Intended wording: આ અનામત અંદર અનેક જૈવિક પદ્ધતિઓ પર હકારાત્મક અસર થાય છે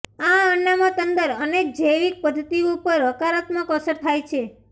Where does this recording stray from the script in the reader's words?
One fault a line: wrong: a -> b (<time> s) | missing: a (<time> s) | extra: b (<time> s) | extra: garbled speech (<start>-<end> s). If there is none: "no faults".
no faults